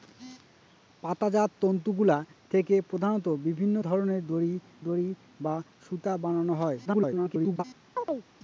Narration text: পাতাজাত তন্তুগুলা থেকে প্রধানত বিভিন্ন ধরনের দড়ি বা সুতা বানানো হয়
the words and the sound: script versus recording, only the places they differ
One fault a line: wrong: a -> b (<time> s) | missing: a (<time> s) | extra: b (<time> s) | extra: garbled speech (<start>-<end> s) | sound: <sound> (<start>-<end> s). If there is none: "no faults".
extra: দড়ি (4.8 s)
extra: garbled speech (6.8-7.6 s)
sound: chirp (8.0-8.3 s)